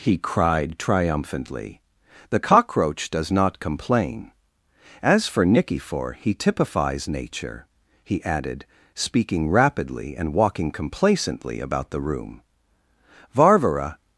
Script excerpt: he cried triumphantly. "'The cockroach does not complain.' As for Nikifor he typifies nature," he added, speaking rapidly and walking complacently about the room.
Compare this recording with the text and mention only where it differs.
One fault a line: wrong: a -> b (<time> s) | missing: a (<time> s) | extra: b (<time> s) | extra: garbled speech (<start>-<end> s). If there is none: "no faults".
extra: Varvara (13.3 s)